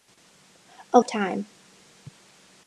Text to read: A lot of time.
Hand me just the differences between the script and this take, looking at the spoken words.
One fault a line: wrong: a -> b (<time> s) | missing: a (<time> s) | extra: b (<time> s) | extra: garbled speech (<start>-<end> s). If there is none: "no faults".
missing: lot (1.0 s)